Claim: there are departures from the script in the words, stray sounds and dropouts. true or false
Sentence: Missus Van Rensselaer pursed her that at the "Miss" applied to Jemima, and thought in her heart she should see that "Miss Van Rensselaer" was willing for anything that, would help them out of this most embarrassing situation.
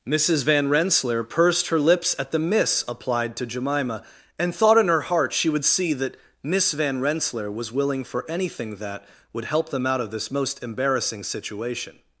true